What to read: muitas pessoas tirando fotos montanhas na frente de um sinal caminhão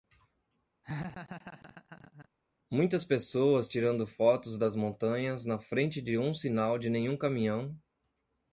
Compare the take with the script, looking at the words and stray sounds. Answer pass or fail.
fail